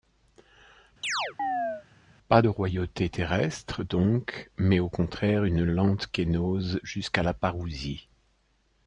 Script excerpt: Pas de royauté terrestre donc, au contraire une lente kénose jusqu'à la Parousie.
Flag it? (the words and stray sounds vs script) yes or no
yes